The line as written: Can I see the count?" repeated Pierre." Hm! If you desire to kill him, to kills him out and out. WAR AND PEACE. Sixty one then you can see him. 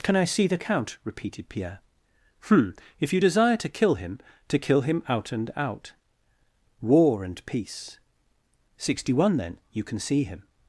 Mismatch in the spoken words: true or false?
true